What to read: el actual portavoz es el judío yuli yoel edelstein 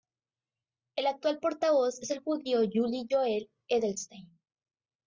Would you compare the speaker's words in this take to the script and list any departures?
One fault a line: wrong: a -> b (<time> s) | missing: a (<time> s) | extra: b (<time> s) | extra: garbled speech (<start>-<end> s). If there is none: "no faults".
no faults